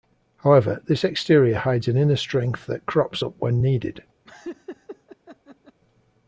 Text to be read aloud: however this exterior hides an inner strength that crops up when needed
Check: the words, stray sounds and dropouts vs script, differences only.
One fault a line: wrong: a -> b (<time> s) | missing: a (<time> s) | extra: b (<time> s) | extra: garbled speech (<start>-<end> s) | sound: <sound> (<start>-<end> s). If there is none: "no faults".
sound: laugh (4.2-5.8 s)